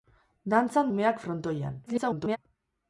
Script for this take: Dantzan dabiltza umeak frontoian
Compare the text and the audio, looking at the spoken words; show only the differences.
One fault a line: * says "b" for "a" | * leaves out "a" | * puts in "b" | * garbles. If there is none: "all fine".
* leaves out "dabiltza"
* garbles